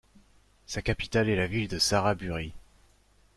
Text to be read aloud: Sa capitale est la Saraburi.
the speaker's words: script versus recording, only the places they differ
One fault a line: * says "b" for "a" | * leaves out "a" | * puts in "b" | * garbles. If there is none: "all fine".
* puts in "ville de"